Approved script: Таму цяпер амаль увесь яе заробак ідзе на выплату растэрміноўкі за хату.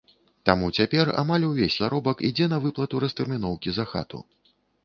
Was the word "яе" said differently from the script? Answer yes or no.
yes